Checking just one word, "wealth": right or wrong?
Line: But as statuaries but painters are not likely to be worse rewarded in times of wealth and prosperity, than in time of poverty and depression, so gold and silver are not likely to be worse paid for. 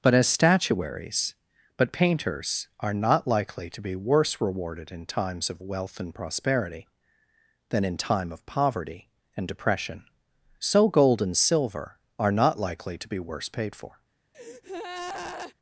right